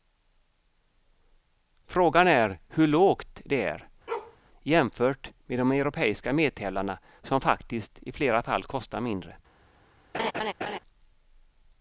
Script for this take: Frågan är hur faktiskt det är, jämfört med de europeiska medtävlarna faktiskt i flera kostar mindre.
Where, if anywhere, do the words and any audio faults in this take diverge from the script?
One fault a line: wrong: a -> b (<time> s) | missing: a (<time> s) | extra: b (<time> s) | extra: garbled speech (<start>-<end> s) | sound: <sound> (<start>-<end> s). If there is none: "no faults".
wrong: faktiskt -> lågt (2.9 s)
sound: bark (4.1-4.4 s)
extra: som (7.2 s)
extra: fall (8.4 s)
sound: laugh (10.1-10.8 s)